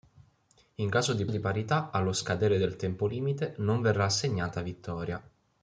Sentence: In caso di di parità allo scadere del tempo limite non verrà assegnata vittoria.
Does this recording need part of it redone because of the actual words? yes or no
no